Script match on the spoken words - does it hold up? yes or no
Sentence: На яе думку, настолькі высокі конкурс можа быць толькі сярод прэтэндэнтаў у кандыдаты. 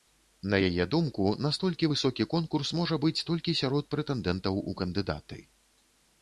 yes